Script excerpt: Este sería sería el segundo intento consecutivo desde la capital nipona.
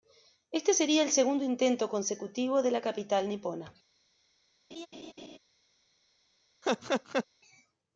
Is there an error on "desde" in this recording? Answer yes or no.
yes